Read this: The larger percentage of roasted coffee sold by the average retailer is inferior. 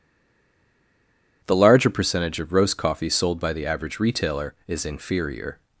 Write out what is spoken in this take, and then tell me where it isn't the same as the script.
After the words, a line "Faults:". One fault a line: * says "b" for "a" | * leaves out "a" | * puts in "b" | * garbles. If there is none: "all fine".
The larger percentage of roast coffee sold by the average retailer is inferior.
Faults:
* says "roast" for "roasted"